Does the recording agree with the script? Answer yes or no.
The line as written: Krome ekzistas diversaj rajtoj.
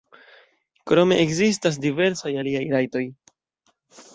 no